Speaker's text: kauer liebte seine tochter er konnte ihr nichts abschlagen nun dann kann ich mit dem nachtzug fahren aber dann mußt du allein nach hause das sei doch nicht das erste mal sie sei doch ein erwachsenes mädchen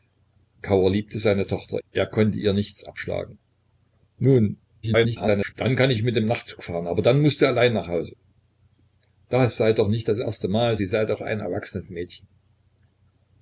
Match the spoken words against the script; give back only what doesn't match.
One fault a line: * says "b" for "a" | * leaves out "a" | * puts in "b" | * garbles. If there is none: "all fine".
* garbles